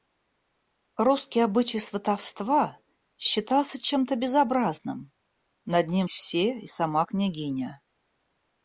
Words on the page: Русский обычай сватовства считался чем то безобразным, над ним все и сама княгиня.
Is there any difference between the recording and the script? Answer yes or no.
no